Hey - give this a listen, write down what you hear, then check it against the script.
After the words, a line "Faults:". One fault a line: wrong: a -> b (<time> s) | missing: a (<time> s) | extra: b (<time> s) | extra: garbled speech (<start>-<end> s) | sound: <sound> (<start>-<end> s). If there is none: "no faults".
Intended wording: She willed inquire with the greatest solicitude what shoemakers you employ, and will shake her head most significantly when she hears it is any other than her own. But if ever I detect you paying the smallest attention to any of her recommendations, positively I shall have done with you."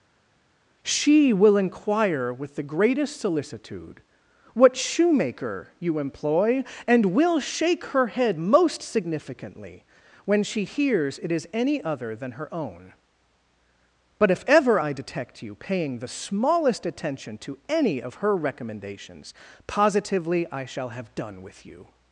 She will inquire with the greatest solicitude what shoemaker you employ, and will shake her head most significantly when she hears it is any other than her own. But if ever I detect you paying the smallest attention to any of her recommendations, positively I shall have done with you."
Faults:
wrong: willed -> will (1.3 s)
wrong: shoemakers -> shoemaker (4.8 s)